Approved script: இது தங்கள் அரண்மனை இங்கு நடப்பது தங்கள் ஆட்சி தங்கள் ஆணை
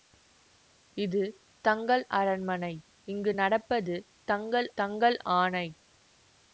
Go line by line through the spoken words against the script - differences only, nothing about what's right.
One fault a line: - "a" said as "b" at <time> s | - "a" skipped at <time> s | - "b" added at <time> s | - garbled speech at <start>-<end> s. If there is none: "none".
- "ஆட்சி" skipped at 4.7 s